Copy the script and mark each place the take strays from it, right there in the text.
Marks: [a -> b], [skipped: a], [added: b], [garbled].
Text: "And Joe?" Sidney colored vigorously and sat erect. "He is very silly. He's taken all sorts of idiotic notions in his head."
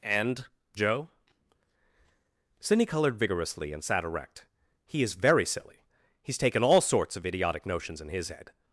"And Joe?" Sidney colored vigorously and sat erect. "He is very silly. He's taken all sorts of idiotic notions in his head."